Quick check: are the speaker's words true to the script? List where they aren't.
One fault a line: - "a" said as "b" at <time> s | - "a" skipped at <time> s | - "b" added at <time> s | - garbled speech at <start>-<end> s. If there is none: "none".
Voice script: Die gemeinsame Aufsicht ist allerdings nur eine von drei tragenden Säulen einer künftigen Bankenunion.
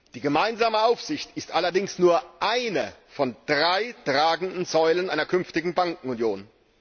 none